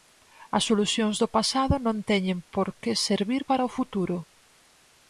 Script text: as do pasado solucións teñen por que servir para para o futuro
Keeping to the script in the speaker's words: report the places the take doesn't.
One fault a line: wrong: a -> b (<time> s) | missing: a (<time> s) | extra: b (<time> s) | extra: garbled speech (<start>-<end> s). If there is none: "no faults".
extra: solucións (0.7 s)
wrong: solucións -> non (1.9 s)
missing: para (3.7 s)